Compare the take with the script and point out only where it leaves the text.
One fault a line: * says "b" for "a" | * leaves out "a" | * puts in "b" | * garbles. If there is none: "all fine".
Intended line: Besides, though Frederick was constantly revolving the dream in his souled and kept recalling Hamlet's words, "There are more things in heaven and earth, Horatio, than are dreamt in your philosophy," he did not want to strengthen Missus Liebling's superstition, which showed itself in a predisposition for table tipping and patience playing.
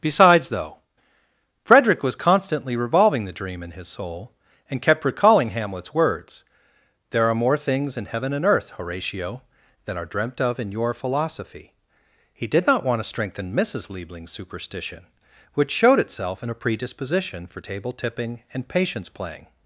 * says "soul" for "souled"
* puts in "of"